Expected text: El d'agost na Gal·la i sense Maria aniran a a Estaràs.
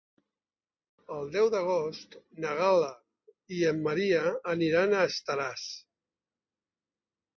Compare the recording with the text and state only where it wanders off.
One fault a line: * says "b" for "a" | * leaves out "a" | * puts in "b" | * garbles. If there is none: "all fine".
* puts in "deu"
* says "en" for "sense"
* leaves out "a"